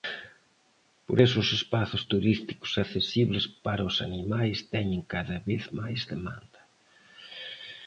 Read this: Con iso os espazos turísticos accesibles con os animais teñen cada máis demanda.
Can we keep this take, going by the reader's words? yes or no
no